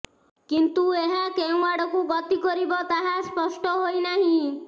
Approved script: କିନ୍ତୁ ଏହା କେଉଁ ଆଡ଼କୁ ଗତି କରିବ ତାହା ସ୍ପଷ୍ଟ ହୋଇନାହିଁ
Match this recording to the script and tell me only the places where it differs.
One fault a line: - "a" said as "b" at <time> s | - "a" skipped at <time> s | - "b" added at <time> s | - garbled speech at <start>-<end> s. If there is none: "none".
none